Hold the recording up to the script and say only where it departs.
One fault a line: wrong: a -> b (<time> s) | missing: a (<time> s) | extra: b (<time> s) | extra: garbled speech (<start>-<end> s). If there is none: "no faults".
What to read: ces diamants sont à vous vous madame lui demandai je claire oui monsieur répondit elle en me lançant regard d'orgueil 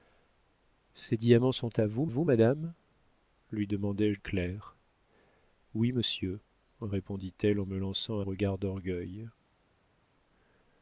no faults